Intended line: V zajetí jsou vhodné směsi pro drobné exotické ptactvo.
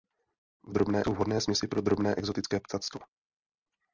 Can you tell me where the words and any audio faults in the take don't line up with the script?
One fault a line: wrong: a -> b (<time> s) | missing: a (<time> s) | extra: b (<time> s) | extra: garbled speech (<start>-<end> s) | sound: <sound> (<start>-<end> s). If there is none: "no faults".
wrong: zajetí -> drobné (0.7 s)